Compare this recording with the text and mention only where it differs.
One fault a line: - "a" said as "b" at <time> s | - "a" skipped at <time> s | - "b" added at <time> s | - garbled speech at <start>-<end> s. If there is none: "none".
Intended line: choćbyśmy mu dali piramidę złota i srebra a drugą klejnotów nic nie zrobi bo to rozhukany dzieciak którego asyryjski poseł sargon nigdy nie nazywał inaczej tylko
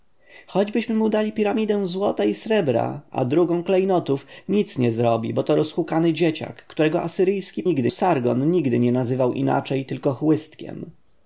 - "poseł" said as "nigdy" at 7.6 s